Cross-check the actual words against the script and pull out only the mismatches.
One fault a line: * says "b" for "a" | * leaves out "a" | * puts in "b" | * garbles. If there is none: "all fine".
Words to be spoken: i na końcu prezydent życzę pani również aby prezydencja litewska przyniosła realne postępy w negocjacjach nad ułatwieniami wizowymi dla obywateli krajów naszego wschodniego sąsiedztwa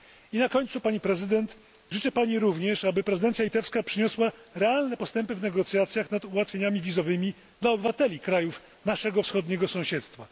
* puts in "pani"